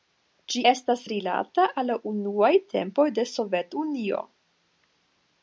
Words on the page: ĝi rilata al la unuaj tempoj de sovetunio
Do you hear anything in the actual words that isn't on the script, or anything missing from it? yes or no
yes